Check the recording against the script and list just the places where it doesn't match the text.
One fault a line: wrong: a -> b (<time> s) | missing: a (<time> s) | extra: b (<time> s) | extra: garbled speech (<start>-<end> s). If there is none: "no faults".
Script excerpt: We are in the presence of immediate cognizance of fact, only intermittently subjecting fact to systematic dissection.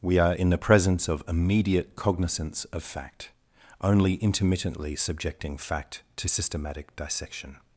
no faults